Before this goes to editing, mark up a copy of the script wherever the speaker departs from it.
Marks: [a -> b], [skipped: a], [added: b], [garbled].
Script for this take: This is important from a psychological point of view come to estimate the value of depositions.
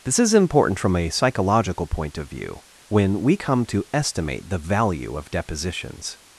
This is important from a psychological point of view [added: when we] come to estimate the value of depositions.